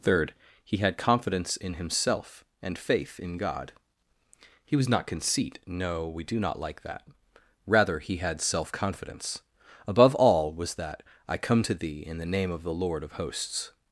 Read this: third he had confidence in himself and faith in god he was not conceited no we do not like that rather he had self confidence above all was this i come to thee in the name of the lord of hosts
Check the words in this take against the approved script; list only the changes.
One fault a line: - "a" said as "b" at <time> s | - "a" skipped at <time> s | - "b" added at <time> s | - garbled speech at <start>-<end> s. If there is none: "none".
- "conceited" said as "conceit" at 5.1 s
- "this" said as "that" at 10.7 s